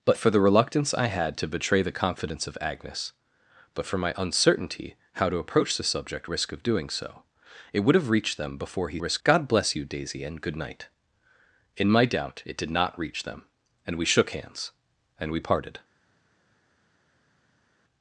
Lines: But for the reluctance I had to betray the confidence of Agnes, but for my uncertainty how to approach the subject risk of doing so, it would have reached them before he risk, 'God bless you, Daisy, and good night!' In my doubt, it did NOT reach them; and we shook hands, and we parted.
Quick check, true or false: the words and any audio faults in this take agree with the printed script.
true